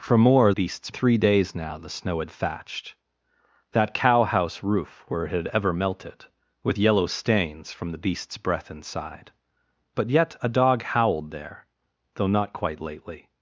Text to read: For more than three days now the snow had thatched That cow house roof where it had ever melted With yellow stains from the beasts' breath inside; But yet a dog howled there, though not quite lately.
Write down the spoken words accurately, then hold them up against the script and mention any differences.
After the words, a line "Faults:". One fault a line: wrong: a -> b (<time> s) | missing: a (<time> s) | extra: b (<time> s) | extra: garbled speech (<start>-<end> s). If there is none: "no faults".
For more beasts three days now the snow had thatched That cow house roof where it had ever melted With yellow stains from the beasts' breath inside; But yet a dog howled there, though not quite lately.
Faults:
wrong: than -> beasts (0.5 s)